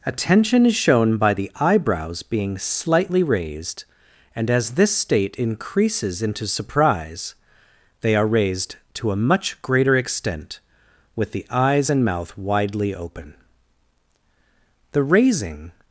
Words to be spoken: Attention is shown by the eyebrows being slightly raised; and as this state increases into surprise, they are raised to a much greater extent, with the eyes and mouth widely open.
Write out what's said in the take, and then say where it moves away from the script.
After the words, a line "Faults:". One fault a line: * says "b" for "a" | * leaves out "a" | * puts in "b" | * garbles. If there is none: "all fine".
Attention is shown by the eyebrows being slightly raised; and as this state increases into surprise, they are raised to a much greater extent, with the eyes and mouth widely open. The raising
Faults:
* puts in "The raising"